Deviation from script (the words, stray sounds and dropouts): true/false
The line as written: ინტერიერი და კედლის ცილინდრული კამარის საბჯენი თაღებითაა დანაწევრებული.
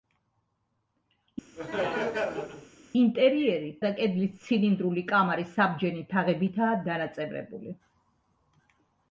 true